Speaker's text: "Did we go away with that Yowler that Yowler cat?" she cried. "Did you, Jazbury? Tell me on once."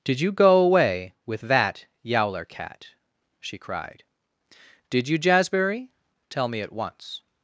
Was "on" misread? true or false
true